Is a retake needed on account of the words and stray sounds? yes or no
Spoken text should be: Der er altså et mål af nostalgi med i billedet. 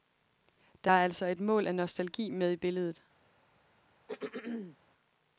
yes